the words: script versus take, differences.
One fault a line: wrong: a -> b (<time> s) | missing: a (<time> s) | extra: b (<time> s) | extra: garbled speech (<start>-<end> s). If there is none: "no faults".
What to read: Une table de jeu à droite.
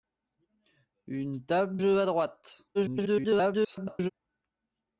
missing: de (1.8 s)
extra: garbled speech (2.7-4.1 s)